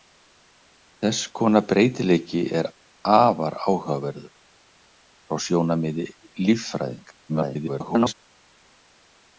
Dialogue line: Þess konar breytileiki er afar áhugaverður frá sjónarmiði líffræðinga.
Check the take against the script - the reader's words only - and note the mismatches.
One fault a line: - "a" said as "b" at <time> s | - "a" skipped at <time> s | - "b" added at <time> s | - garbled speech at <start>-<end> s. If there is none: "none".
- garbled speech at 7.3-8.1 s